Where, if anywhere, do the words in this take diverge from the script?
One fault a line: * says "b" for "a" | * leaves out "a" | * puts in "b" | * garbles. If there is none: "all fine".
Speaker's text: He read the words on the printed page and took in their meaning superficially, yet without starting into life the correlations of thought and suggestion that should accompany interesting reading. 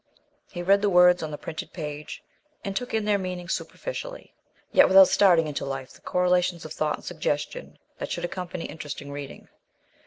all fine